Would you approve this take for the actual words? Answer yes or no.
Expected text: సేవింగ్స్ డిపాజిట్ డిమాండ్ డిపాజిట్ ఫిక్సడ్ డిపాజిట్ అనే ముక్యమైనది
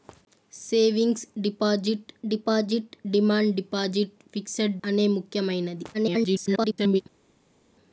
no